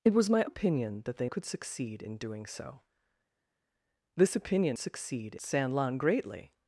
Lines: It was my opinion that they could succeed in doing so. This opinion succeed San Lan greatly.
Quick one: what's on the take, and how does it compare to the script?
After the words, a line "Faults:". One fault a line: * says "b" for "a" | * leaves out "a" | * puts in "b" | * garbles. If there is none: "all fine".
It was my opinion that they could succeed in doing so. This opinion succeed San Lan greatly.
Faults:
all fine